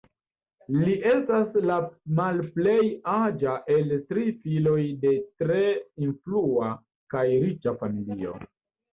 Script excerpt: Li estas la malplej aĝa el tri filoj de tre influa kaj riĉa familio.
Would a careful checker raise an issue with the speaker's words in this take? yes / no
no